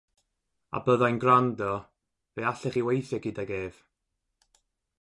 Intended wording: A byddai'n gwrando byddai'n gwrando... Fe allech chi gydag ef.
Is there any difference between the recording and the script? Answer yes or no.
yes